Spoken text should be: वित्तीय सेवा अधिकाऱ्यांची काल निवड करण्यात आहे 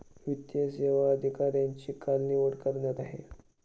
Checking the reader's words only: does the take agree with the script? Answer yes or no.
yes